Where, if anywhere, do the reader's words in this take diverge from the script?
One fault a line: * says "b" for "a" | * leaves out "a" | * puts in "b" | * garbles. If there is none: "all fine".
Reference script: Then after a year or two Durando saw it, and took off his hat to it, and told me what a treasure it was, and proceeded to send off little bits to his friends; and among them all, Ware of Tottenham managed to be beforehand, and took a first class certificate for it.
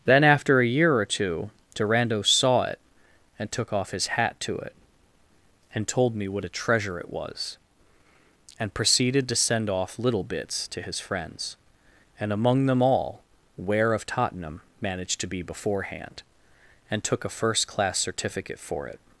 all fine